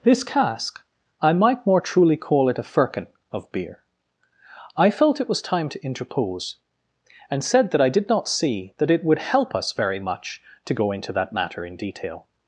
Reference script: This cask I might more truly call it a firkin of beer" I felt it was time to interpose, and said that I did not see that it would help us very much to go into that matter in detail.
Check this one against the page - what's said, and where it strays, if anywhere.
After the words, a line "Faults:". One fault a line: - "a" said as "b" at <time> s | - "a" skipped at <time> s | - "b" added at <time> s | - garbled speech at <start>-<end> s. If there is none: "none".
This cask I might more truly call it a firkin of beer" I felt it was time to interpose, and said that I did not see that it would help us very much to go into that matter in detail.
Faults:
none